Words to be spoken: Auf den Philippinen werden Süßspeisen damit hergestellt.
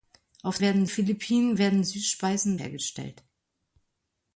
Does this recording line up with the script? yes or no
no